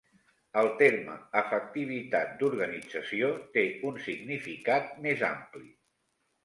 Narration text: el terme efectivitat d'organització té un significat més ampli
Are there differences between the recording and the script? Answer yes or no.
no